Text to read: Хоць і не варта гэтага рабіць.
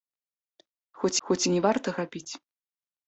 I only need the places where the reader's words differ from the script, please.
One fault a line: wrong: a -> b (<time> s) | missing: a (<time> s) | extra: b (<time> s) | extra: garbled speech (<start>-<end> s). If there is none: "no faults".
extra: хоць (1.3 s)
missing: гэтага (1.9 s)